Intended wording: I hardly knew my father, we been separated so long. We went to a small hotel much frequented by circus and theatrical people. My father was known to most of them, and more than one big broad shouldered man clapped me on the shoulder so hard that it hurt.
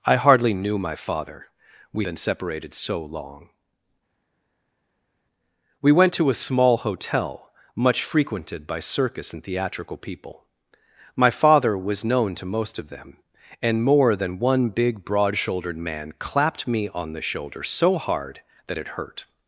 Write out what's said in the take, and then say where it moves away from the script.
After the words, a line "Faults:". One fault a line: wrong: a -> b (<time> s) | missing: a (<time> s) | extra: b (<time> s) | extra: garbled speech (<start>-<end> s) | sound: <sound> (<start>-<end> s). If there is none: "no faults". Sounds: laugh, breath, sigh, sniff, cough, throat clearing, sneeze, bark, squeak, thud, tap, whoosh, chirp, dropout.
I hardly knew my father, we been separated so long. We went to a small hotel much frequented by circus and theatrical people. My father was known to most of them, and more than one big broad shouldered man clapped me on the shoulder so hard that it hurt.
Faults:
no faults